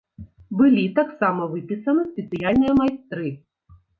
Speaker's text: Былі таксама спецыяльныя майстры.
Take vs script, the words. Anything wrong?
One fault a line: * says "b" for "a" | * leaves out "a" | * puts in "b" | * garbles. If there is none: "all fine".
* puts in "выпісаны"